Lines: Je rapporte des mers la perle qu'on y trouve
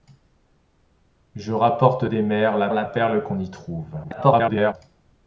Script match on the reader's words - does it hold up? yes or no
no